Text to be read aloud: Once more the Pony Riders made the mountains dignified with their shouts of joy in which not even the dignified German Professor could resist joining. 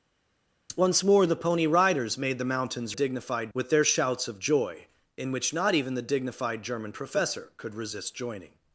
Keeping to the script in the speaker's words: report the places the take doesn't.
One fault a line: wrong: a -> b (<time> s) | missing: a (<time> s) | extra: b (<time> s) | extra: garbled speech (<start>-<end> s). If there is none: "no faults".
no faults